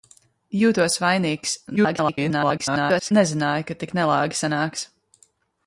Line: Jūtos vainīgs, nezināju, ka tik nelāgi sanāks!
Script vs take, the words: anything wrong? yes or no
yes